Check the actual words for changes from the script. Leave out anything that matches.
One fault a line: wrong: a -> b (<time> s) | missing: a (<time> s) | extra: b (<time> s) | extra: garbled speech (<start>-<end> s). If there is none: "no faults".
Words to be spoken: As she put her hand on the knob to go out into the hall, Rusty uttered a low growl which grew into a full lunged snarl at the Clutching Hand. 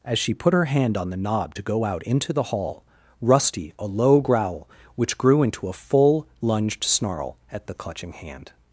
missing: uttered (3.7 s)